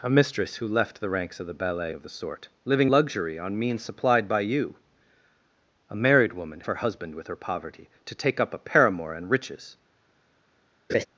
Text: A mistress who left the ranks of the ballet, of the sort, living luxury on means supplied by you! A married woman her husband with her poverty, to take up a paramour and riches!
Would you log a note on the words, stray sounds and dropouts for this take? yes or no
yes